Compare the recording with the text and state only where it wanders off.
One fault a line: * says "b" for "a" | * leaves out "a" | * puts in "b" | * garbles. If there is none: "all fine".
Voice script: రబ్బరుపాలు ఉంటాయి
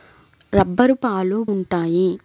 all fine